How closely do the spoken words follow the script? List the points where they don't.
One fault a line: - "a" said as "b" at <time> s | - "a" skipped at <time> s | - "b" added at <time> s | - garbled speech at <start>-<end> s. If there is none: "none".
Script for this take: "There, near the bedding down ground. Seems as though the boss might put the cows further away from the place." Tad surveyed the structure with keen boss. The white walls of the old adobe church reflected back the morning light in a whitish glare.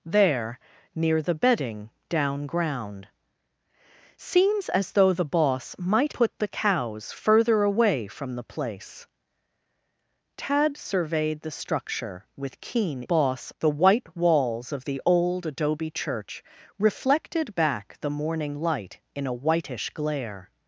none